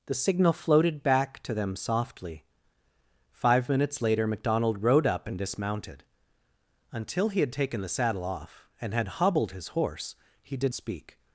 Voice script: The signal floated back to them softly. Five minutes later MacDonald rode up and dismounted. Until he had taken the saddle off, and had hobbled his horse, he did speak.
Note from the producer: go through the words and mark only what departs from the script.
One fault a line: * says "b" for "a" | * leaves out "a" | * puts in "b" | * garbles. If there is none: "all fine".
all fine